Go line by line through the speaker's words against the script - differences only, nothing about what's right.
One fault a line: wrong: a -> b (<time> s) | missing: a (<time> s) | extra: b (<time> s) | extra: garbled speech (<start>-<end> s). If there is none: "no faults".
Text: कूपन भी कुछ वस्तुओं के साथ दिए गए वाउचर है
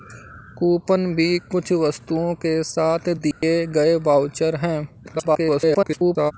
extra: garbled speech (5.0-6.3 s)